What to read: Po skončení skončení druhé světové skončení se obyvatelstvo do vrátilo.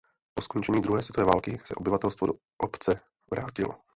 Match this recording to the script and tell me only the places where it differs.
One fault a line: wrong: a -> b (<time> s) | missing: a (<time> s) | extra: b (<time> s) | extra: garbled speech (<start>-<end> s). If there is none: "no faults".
missing: skončení (0.8 s)
wrong: skončení -> války (1.2 s)
extra: obce (2.6 s)